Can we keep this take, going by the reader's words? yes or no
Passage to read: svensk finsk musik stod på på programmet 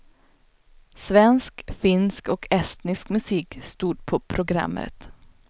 no